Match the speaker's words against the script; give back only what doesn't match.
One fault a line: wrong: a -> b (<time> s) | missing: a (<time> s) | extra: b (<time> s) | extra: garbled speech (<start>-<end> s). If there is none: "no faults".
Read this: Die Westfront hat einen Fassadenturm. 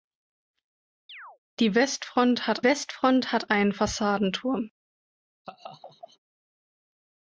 extra: Westfront hat (2.6 s)